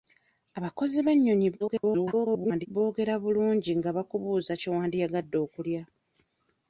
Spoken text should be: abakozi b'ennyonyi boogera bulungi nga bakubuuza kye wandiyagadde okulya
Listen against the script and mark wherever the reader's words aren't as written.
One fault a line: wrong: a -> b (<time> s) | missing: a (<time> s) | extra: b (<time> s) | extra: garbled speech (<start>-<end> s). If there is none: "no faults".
extra: garbled speech (1.6-2.7 s)